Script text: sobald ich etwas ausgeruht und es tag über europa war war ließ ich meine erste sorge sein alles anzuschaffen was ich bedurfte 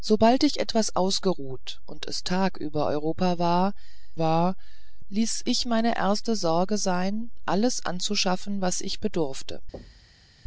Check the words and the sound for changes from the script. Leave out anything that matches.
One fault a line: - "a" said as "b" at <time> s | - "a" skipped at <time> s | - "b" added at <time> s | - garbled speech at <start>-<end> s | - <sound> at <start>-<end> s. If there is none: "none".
- thud at 9.7-10.3 s